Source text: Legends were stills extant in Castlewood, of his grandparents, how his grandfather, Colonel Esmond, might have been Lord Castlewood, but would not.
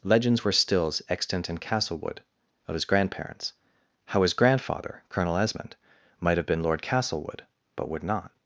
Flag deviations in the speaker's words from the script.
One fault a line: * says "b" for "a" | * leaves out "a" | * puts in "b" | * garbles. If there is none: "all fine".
all fine